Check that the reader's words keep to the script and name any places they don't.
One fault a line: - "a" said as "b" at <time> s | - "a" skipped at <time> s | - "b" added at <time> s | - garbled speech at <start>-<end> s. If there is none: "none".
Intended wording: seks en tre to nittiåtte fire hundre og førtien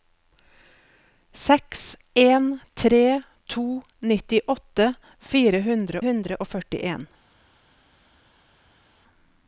- "hundre" added at 6.1 s